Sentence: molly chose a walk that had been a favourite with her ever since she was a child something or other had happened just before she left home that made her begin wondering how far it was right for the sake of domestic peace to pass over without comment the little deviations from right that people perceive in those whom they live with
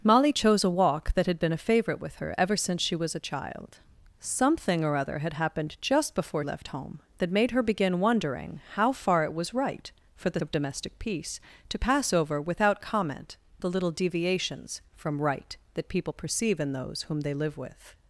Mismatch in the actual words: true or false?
true